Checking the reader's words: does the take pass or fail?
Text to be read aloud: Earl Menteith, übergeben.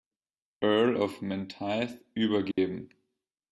fail